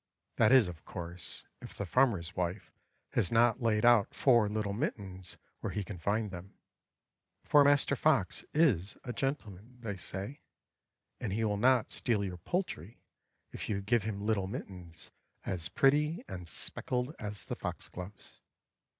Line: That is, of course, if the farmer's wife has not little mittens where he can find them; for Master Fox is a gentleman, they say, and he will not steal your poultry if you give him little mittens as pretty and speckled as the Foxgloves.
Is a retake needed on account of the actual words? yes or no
yes